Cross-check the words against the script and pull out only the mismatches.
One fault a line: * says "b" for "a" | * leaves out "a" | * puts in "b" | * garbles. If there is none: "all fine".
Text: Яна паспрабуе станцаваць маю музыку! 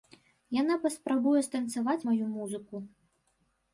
all fine